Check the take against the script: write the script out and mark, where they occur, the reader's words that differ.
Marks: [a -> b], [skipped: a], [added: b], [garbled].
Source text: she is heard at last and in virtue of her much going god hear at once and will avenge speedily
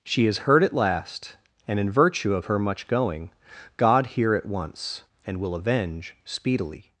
she is heard at last and in virtue of her much going god hear at once and will avenge speedily